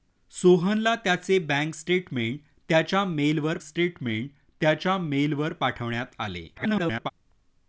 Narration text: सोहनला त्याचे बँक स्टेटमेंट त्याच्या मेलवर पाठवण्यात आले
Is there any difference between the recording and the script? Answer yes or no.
yes